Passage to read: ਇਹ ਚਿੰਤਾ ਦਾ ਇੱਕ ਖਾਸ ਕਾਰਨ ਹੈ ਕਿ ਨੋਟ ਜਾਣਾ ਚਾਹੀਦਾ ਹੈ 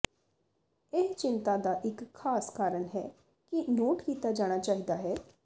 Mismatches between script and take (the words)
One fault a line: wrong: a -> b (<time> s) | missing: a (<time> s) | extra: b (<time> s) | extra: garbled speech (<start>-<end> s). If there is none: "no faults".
extra: ਕੀਤਾ (4.0 s)